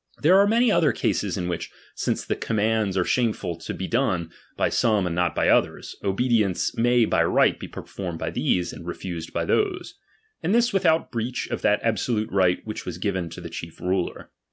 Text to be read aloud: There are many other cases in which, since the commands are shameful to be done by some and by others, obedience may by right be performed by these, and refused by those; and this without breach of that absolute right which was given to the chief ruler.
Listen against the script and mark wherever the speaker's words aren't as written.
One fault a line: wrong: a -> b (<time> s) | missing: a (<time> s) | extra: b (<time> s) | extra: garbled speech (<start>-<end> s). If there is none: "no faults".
extra: not (5.1 s)